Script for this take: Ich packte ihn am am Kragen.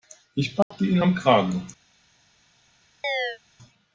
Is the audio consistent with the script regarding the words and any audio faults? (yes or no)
no